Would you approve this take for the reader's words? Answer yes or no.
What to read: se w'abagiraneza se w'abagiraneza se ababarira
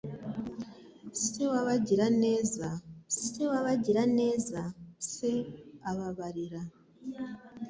yes